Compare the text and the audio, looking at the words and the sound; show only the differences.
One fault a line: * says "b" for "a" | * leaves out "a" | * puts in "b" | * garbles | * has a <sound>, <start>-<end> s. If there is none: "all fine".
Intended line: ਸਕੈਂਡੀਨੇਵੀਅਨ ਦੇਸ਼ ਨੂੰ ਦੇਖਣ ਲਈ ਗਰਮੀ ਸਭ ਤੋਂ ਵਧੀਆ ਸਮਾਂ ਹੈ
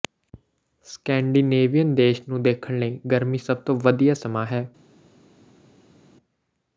all fine